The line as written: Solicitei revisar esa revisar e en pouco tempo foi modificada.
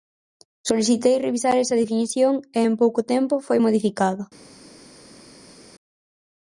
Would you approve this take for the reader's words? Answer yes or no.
no